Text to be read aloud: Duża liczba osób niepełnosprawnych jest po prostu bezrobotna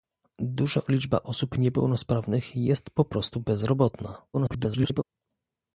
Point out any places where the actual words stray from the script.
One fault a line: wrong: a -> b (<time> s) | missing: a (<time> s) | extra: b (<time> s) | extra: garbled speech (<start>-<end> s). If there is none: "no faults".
extra: garbled speech (4.3-5.0 s)